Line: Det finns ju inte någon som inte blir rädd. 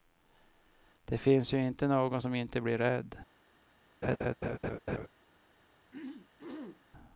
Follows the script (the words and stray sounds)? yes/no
no